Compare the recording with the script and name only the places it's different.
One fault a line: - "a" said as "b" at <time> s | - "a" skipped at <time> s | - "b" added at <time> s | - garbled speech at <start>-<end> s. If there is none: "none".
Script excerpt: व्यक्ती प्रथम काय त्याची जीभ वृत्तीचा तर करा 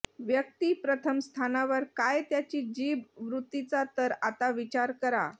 - "स्थानावर" added at 1.2 s
- "आता विचार" added at 4.2 s